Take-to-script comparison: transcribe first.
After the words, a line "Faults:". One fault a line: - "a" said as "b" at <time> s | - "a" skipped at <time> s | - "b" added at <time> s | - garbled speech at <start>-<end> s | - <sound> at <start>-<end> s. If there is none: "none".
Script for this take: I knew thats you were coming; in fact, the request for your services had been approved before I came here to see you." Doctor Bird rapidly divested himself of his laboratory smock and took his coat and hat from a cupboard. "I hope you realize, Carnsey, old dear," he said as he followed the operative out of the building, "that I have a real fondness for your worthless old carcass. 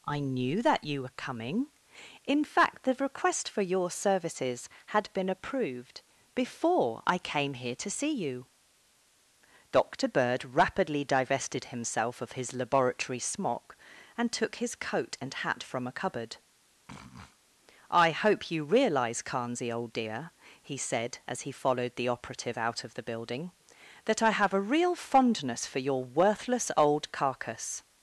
I knew that you were coming; in fact, the request for your services had been approved before I came here to see you." Doctor Bird rapidly divested himself of his laboratory smock and took his coat and hat from a cupboard. "I hope you realize, Carnsey, old dear," he said as he followed the operative out of the building, "that I have a real fondness for your worthless old carcass.
Faults:
- "thats" said as "that" at 0.6 s
- sniff at 16.9-17.4 s